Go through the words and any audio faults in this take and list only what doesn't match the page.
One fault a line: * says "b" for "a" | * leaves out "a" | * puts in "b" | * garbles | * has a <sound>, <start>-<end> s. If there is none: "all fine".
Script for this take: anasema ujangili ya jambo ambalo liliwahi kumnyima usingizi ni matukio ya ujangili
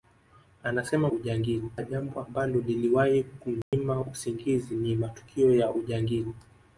* has a dropout, 3.6-3.7 s